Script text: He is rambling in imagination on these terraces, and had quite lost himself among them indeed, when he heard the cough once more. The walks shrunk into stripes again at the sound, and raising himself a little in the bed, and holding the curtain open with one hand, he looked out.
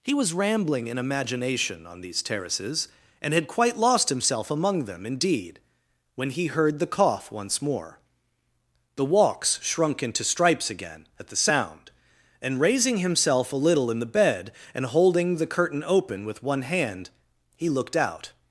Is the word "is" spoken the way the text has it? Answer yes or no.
no